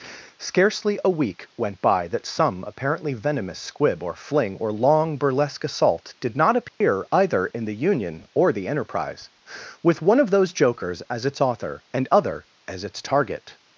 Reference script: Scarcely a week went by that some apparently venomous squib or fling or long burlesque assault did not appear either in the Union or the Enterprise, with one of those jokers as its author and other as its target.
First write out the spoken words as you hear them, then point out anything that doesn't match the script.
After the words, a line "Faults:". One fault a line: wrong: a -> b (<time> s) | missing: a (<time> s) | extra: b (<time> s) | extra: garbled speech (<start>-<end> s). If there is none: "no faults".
Scarcely a week went by that some apparently venomous squib or fling or long burlesque assault did not appear either in the Union or the Enterprise, with one of those jokers as its author and other as its target.
Faults:
no faults